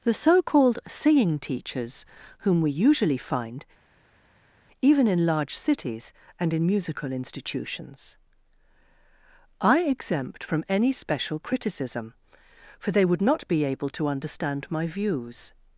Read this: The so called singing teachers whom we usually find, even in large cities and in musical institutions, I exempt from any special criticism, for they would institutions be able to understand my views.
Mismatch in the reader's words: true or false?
true